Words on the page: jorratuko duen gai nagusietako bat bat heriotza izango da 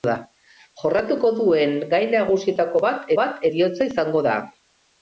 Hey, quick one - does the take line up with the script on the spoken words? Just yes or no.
yes